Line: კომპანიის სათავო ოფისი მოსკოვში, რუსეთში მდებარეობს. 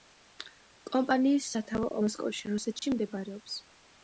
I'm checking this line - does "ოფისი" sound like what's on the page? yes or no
no